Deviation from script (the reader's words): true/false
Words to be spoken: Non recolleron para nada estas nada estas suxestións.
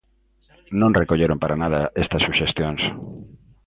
true